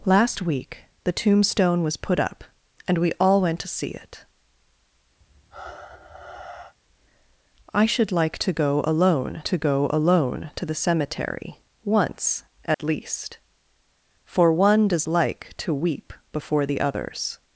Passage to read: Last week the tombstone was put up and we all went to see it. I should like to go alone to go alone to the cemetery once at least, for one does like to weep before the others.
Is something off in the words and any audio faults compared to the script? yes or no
yes